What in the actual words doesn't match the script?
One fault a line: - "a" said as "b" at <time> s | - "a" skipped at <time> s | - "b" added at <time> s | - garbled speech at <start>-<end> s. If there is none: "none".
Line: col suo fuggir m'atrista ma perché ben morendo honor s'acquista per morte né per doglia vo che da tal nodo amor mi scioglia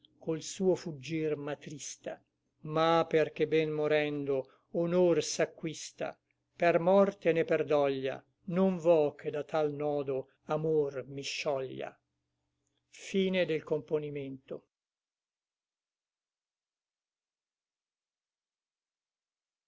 - "non" added at 8.5 s